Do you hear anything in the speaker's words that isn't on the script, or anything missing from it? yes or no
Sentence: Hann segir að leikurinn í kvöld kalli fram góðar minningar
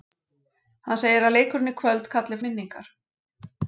yes